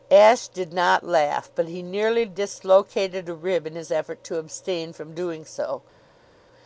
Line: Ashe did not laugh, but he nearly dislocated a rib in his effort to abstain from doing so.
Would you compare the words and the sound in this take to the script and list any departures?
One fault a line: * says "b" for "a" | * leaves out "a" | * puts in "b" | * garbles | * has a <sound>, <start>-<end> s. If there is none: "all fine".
all fine